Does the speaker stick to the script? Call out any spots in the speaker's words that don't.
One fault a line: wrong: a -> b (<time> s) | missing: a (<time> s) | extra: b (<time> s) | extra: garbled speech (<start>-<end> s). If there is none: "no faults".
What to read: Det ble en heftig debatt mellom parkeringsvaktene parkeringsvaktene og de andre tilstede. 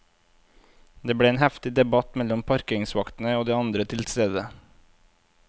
missing: parkeringsvaktene (3.4 s)